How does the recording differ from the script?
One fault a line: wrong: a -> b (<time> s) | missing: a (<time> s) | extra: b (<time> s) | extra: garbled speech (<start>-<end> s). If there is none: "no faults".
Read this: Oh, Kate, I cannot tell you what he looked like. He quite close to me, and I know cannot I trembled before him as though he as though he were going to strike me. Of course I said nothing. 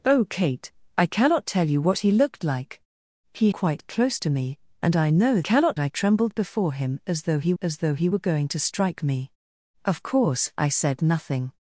no faults